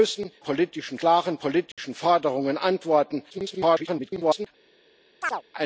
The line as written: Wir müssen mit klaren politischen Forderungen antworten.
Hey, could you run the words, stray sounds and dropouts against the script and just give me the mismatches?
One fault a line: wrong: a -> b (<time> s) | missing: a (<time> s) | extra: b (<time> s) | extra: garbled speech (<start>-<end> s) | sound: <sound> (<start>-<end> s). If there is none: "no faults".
wrong: mit -> politischen (0.4 s)
sound: dropout (1.7-1.8 s)
extra: garbled speech (3.3-4.5 s)
sound: chirp (5.2-5.4 s)